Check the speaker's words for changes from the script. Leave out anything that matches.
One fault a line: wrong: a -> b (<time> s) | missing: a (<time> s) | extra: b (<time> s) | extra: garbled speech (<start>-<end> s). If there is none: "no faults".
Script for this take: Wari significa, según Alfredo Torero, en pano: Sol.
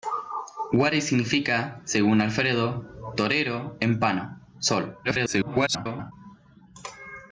extra: garbled speech (5.0-6.1 s)